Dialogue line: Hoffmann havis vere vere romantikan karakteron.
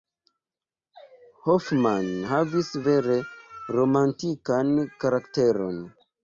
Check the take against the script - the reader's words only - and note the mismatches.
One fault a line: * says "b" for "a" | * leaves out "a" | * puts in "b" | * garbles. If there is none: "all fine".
* leaves out "vere"